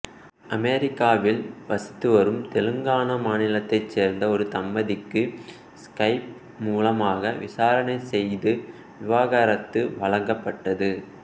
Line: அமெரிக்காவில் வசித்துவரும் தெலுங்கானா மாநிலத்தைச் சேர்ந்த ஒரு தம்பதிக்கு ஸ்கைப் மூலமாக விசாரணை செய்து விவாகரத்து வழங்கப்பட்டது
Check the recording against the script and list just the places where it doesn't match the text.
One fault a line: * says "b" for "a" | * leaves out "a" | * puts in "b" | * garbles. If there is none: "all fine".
all fine